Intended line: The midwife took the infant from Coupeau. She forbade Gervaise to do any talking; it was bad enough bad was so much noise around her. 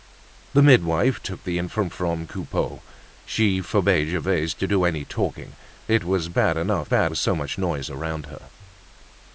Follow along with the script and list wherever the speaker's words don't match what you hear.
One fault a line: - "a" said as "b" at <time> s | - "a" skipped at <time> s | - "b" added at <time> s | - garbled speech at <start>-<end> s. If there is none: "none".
none